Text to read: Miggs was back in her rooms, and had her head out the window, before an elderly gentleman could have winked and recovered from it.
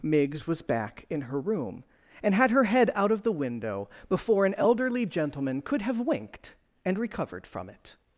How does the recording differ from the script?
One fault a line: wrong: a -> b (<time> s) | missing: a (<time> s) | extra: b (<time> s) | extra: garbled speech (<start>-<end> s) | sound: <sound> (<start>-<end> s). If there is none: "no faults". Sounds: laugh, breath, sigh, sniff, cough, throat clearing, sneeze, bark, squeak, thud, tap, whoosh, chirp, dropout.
wrong: rooms -> room (1.4 s)
extra: of (3.1 s)